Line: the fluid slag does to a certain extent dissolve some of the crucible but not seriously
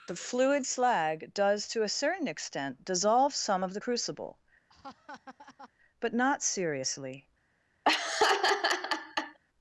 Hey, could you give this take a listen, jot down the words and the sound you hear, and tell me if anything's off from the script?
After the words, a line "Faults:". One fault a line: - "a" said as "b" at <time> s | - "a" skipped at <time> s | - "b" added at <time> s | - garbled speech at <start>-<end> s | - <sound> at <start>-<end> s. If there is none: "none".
the fluid slag does to a certain extent dissolve some of the crucible but not seriously
Faults:
- laugh at 4.7-5.7 s
- laugh at 7.8-9.4 s